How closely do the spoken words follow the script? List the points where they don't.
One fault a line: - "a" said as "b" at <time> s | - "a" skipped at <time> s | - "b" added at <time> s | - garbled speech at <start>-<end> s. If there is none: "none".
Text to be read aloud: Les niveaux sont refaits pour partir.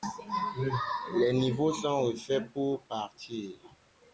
none